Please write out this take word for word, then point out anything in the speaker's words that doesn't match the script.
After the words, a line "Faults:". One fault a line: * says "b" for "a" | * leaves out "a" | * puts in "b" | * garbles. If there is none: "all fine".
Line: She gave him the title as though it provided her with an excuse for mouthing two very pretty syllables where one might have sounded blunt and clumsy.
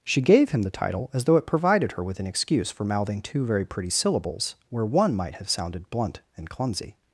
She gave him the title as though it provided her with an excuse for mouthing two very pretty syllables where one might have sounded blunt and clumsy.
Faults:
all fine